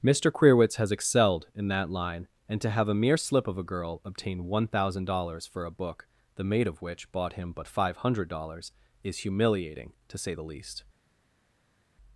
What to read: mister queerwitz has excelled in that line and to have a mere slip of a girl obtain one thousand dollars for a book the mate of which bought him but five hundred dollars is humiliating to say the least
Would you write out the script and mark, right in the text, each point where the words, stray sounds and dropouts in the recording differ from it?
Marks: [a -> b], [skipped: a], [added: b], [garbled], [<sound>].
mister queerwitz has excelled in that line and to have a mere slip of a girl obtain one thousand dollars for a book the mate of which bought him but five hundred dollars is humiliating to say the least